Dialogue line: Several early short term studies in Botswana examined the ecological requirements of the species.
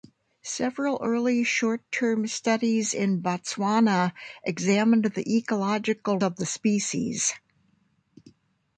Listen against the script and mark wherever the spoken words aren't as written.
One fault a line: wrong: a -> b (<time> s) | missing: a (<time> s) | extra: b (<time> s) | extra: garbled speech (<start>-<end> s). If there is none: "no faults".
missing: requirements (6.2 s)